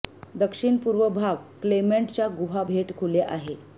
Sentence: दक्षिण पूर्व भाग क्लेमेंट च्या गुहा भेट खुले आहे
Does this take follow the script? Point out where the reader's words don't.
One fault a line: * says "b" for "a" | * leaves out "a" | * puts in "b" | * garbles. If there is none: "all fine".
all fine